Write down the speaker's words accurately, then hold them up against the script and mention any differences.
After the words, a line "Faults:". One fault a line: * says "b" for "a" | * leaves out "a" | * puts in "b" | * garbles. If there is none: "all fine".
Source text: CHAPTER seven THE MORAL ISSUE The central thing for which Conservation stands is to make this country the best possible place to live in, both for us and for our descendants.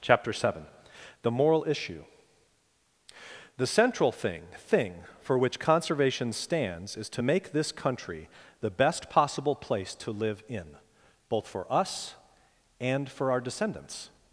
CHAPTER seven THE MORAL ISSUE The central thing thing for which Conservation stands is to make this country the best possible place to live in, both for us and for our descendants.
Faults:
* puts in "thing"